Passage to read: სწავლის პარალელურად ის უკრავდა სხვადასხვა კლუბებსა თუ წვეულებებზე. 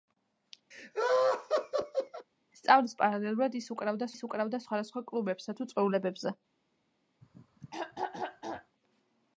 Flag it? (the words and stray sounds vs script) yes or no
yes